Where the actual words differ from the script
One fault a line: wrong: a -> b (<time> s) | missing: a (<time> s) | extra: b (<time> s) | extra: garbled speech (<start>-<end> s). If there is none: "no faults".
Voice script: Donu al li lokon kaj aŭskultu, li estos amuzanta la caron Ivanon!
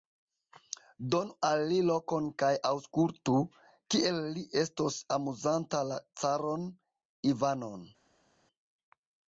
extra: kiel (3.9 s)